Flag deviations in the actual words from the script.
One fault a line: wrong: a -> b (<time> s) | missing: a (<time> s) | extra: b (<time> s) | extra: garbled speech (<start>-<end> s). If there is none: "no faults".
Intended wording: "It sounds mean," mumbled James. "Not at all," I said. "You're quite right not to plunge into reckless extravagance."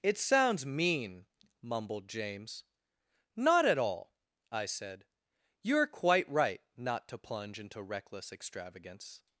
no faults